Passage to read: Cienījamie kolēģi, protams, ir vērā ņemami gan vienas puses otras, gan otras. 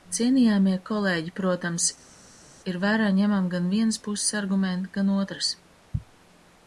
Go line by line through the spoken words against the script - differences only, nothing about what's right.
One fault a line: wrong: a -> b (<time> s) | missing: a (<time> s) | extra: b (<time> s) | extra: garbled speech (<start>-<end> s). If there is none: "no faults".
wrong: otras -> argumenti (4.4 s)